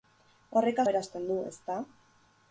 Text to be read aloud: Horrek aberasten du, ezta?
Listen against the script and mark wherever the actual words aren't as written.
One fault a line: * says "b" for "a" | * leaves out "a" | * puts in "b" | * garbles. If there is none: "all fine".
all fine